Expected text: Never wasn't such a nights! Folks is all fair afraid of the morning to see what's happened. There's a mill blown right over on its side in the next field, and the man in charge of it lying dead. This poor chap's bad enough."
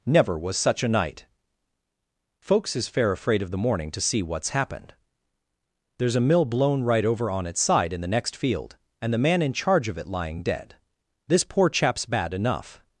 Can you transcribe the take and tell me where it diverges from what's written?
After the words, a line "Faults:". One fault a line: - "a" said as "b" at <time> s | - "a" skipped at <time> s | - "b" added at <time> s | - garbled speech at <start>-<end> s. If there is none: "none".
Never was such a night! Folks is fair afraid of the morning to see what's happened. There's a mill blown right over on its side in the next field, and the man in charge of it lying dead. This poor chap's bad enough."
Faults:
- "wasn't" said as "was" at 0.4 s
- "nights" said as "night" at 0.9 s
- "all" skipped at 2.9 s